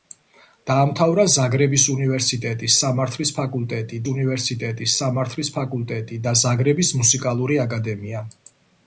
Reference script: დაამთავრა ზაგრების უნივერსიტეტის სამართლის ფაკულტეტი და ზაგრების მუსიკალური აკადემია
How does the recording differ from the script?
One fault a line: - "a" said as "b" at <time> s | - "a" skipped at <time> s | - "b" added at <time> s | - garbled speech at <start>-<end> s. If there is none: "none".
- "უნივერსიტეტის სამართლის ფაკულტეტი" added at 4.1 s